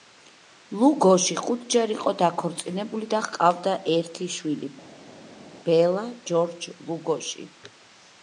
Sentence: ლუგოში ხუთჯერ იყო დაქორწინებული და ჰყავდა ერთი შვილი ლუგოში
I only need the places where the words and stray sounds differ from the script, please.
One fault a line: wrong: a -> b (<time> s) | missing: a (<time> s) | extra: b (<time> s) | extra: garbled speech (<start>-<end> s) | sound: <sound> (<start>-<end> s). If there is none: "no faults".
extra: ბელა ჯორჯ (5.7 s)